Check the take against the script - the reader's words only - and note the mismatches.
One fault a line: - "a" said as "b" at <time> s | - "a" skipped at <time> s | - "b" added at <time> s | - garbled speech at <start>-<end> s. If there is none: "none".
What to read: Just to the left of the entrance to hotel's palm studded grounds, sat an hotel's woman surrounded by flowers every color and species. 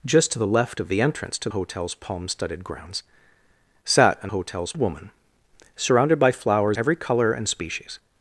none